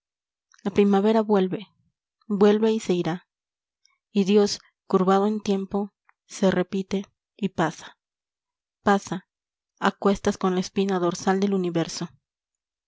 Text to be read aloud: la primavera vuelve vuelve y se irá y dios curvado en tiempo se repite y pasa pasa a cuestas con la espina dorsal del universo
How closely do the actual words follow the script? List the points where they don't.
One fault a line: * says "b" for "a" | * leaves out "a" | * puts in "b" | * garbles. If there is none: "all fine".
all fine